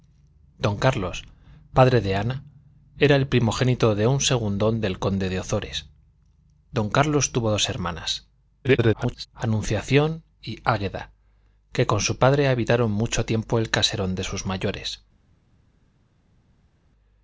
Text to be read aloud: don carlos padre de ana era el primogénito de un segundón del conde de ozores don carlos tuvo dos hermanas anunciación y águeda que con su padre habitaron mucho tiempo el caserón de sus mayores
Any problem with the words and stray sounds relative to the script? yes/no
yes